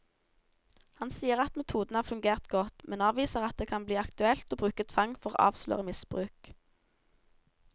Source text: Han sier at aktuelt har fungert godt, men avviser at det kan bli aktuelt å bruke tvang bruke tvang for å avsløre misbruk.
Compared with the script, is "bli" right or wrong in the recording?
right